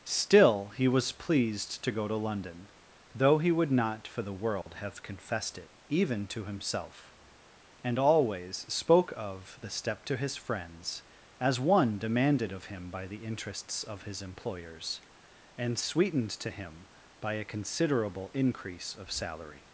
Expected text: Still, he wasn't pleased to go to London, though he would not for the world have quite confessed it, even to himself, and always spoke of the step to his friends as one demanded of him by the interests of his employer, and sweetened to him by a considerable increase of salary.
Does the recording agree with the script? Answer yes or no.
no